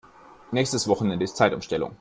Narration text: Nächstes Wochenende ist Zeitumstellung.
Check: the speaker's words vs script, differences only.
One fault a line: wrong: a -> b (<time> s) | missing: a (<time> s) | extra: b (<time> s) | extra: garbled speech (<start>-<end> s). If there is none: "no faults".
no faults